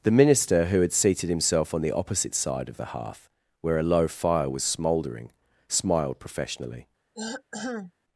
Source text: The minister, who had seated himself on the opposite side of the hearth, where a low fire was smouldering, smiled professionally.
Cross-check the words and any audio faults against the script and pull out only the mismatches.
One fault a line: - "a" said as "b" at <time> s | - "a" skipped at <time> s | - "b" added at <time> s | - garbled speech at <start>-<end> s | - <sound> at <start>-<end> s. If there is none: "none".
- throat clearing at 7.1-7.9 s